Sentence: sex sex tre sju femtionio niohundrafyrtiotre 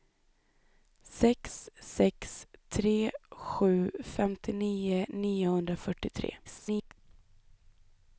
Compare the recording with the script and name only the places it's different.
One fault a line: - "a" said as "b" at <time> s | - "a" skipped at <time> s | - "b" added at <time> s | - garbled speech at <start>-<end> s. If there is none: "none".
- garbled speech at 6.4-6.9 s